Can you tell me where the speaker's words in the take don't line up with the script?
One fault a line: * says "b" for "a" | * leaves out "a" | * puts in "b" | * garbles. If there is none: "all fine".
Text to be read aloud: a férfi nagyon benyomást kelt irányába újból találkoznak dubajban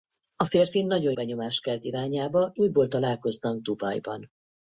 all fine